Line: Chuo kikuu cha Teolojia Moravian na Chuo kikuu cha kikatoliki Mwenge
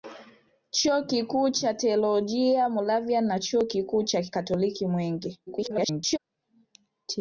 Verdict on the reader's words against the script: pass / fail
fail